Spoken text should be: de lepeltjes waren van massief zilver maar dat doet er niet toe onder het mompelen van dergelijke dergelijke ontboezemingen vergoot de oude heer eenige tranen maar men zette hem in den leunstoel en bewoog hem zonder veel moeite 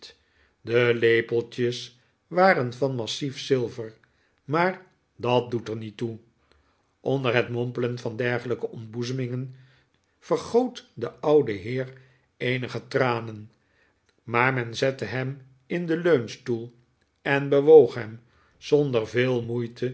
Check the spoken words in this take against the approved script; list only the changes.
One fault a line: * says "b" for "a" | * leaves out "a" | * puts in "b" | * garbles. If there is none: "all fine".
* leaves out "dergelijke"